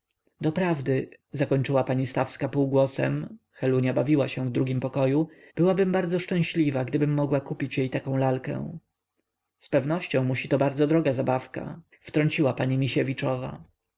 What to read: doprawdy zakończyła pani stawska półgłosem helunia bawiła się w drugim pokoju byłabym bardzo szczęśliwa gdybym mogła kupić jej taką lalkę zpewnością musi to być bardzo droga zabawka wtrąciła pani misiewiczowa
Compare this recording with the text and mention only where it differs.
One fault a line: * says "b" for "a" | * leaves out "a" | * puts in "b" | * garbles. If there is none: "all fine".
* leaves out "być"